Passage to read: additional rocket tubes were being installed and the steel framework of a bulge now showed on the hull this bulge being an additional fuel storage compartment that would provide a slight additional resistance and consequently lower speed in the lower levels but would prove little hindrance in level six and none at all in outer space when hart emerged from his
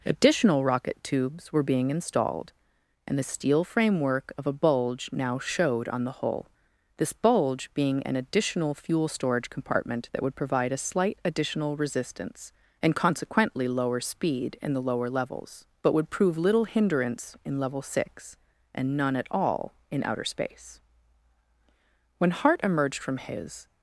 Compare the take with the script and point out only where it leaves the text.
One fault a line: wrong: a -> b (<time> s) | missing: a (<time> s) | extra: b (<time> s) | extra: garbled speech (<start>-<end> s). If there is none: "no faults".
no faults